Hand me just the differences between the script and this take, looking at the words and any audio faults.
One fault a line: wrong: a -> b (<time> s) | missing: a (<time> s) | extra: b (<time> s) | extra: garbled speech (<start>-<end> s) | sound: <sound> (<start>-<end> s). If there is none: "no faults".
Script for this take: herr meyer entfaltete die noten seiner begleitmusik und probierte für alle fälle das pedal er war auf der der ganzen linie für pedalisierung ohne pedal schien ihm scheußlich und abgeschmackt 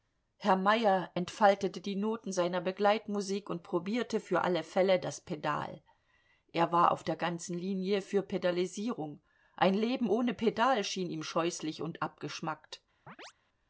missing: der (7.2 s)
extra: ein leben (9.6 s)
sound: chirp (13.1-13.3 s)